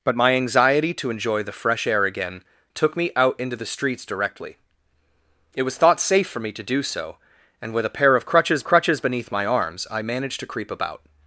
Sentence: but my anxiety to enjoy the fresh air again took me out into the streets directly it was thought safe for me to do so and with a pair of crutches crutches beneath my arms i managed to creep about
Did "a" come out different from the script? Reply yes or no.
no